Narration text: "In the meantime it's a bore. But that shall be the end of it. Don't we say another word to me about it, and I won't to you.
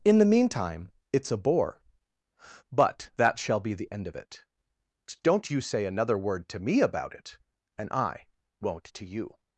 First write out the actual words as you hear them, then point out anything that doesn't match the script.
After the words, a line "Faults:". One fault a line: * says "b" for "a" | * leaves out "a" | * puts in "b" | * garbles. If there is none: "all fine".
"In the meantime it's a bore. But that shall be the end of it. Don't you say another word to me about it, and I won't to you.
Faults:
* says "you" for "we"